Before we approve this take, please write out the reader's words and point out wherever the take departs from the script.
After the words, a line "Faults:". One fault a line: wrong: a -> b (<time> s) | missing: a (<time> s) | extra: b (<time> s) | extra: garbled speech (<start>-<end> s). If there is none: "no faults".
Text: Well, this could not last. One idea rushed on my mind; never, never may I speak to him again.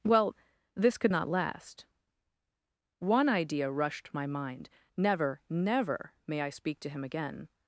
Well, this could not last. One idea rushed my mind; never, never may I speak to him again.
Faults:
missing: on (4.1 s)